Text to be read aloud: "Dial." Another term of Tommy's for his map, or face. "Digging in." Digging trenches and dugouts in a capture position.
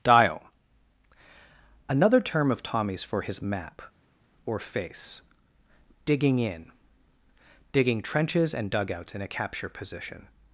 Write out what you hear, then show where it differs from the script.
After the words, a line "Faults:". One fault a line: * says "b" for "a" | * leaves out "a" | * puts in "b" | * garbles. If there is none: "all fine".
"Dial." Another term of Tommy's for his map, or face. "Digging in." Digging trenches and dugouts in a capture position.
Faults:
all fine